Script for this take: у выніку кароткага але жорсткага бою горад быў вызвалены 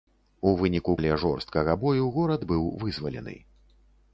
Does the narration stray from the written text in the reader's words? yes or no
yes